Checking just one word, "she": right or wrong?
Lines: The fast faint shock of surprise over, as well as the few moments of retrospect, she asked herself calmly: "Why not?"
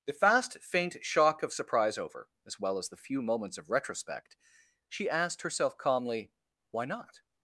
right